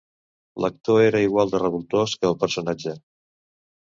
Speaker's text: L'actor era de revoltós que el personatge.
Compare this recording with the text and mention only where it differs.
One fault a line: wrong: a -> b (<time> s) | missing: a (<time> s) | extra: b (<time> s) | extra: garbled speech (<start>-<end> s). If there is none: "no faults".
extra: igual (1.2 s)